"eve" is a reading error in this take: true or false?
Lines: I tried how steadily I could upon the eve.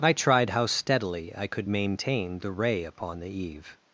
false